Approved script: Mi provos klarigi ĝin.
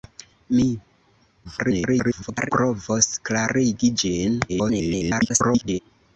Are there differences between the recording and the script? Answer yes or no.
yes